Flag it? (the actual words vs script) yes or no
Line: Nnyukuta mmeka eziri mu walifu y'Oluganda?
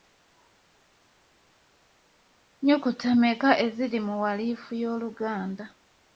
no